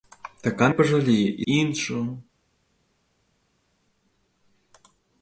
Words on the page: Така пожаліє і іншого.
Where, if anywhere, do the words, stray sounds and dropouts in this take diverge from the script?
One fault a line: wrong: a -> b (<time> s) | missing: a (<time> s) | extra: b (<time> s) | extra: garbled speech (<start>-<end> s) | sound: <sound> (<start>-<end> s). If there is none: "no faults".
no faults